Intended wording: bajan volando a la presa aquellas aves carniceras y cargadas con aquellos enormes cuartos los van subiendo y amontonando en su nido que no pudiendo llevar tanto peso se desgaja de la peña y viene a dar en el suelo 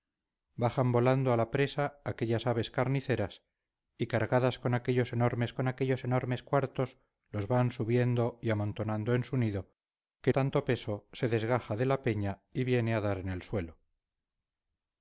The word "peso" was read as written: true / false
true